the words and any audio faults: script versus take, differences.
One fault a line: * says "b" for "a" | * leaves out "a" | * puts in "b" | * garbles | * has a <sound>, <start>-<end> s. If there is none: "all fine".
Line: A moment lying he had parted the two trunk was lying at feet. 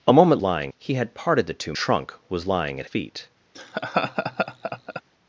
* has a laugh, 3.5-5.0 s